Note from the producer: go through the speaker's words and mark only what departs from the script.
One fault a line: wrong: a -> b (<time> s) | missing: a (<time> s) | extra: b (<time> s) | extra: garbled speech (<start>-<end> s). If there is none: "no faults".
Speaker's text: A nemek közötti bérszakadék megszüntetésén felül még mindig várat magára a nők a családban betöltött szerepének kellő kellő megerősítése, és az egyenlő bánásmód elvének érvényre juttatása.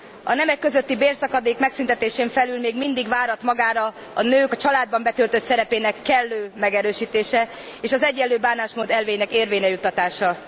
missing: kellő (6.5 s)